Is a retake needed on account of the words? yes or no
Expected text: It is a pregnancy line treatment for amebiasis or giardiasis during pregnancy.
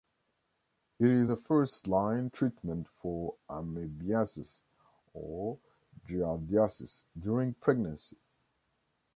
yes